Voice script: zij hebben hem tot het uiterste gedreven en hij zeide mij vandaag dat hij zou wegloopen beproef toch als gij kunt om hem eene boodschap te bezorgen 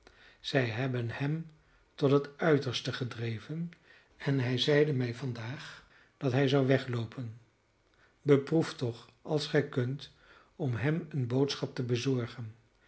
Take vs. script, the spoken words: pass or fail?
pass